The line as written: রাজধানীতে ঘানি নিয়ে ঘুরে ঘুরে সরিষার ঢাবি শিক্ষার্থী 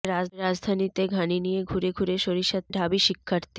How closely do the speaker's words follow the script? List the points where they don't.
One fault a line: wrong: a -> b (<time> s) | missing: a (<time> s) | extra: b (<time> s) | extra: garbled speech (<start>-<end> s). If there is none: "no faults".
no faults